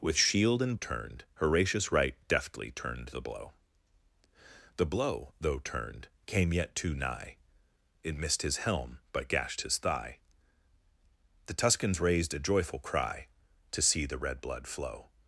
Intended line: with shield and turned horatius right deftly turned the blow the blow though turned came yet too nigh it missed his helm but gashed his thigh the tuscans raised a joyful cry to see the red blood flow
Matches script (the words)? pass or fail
pass